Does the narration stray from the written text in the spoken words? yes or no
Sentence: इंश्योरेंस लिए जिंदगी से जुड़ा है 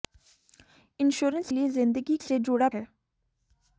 no